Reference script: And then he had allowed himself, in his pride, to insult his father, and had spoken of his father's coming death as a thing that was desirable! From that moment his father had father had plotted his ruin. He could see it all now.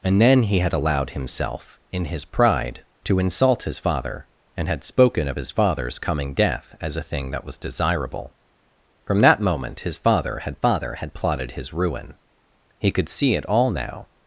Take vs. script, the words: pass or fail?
pass